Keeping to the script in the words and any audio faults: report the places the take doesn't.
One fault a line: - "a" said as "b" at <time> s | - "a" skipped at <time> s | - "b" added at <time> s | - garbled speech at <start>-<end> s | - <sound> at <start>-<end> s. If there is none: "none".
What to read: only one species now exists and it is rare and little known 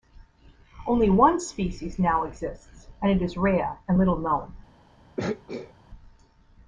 - throat clearing at 5.2-5.7 s